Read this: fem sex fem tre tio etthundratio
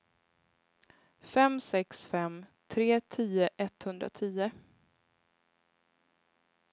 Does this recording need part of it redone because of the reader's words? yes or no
no